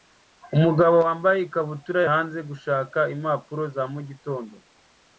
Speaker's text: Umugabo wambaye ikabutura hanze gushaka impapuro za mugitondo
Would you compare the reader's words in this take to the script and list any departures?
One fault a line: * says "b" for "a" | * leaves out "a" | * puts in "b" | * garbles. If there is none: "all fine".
all fine